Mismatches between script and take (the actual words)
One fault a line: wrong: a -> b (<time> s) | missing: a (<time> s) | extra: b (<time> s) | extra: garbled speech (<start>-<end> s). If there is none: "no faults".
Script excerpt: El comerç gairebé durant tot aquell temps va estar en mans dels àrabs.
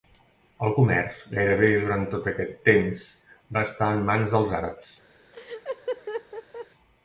wrong: aquell -> aquest (2.3 s)